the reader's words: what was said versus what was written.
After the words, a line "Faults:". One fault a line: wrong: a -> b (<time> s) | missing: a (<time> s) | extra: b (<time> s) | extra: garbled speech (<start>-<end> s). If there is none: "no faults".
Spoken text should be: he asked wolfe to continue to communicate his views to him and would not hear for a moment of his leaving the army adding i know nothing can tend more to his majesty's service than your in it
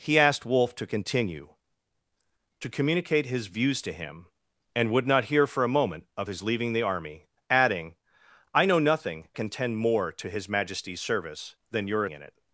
he asked wolfe to continue to communicate his views to him and would not hear for a moment of his leaving the army adding i know nothing can tend more to his majesty's service than your in it
Faults:
no faults